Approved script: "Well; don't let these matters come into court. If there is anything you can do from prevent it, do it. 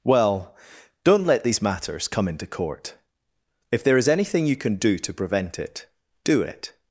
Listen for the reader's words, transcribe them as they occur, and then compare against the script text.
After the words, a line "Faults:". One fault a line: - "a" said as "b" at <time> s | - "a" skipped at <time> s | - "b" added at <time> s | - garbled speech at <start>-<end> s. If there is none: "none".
"Well; don't let these matters come into court. If there is anything you can do to prevent it, do it.
Faults:
- "from" said as "to" at 5.0 s